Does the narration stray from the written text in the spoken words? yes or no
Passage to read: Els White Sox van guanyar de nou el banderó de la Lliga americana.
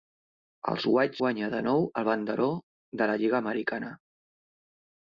yes